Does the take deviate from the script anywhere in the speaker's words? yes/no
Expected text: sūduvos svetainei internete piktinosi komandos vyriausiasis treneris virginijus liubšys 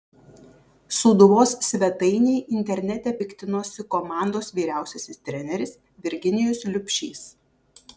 no